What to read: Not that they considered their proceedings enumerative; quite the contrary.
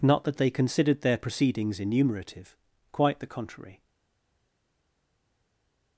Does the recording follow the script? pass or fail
pass